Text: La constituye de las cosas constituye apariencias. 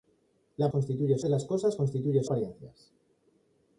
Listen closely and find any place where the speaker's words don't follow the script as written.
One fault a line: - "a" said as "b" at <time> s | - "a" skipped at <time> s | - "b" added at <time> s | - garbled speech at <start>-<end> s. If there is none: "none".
none